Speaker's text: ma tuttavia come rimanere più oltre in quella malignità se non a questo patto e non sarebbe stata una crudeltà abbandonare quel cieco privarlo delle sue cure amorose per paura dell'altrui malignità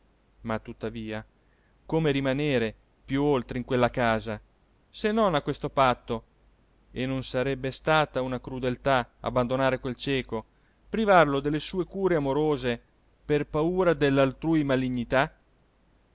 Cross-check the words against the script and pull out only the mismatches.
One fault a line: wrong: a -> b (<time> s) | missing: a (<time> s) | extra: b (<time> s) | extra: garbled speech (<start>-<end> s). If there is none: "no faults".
wrong: malignità -> casa (3.9 s)